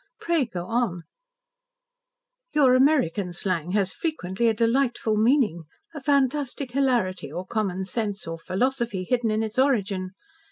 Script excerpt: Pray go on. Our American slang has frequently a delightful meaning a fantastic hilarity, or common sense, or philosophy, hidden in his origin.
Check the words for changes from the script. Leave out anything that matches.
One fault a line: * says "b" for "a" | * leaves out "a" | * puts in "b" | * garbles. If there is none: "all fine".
* says "Your" for "Our"
* says "its" for "his"